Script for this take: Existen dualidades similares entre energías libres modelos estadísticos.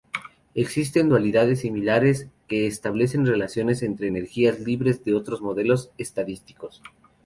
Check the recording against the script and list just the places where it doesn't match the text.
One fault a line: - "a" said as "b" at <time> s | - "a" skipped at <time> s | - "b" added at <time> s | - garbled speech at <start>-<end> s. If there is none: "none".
- "que establecen relaciones" added at 2.5 s
- "de otros" added at 5.0 s